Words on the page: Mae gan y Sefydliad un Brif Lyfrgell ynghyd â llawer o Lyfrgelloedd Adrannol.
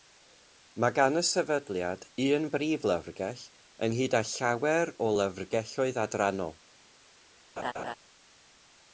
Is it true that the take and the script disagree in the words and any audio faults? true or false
true